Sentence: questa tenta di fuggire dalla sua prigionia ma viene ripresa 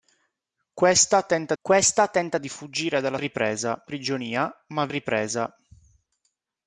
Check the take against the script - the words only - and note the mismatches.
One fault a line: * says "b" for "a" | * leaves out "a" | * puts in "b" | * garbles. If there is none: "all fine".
* puts in "questa tenta"
* says "ripresa" for "sua"
* leaves out "viene"